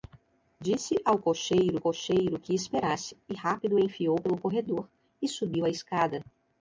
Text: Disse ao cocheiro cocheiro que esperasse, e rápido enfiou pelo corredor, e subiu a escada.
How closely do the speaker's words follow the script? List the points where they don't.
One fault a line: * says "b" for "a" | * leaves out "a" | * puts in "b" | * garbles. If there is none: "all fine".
all fine